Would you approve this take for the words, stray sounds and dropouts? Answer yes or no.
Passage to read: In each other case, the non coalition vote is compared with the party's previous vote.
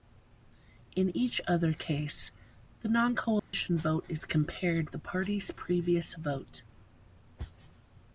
no